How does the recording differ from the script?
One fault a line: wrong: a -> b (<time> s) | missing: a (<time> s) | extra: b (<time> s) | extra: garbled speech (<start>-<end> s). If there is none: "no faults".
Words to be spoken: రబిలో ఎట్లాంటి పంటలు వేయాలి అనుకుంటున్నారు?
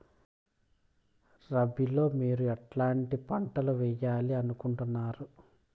extra: మీరు (2.1 s)